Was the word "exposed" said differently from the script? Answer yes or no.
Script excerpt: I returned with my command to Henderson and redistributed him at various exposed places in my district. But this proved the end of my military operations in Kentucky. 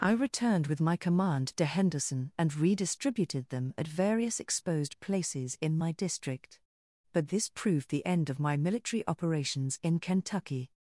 no